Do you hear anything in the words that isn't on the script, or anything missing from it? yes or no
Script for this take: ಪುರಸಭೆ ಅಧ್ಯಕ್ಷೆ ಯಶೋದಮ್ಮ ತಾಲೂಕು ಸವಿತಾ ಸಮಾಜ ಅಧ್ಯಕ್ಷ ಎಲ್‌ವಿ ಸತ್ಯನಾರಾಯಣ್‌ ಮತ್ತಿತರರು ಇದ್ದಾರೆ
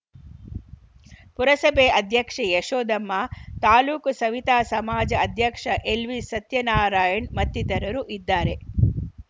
no